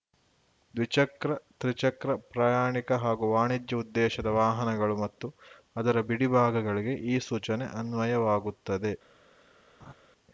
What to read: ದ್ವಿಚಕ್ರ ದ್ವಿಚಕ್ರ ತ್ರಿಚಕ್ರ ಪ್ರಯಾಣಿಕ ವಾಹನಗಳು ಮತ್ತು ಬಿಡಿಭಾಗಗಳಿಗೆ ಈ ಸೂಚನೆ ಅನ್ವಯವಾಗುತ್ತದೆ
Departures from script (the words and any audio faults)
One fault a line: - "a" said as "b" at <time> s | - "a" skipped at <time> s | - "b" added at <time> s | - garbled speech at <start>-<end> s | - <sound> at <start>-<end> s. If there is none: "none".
- "ದ್ವಿಚಕ್ರ" skipped at 1.3 s
- "ಹಾಗೂ ವಾಣಿಜ್ಯ ಉದ್ದೇಶದ" added at 3.0 s
- "ಅದರ" added at 5.8 s
- laugh at 9.8-9.9 s